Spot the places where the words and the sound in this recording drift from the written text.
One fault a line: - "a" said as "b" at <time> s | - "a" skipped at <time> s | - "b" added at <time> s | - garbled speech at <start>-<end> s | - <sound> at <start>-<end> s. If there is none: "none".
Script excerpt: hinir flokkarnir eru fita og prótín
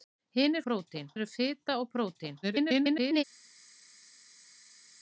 - "flokkarnir" said as "prótín" at 0.7 s
- garbled speech at 2.4-3.2 s